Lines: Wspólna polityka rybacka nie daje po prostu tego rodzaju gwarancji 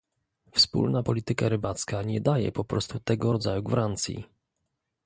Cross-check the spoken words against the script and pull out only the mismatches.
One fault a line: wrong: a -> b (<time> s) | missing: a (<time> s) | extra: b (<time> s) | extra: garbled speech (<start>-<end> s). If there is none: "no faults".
no faults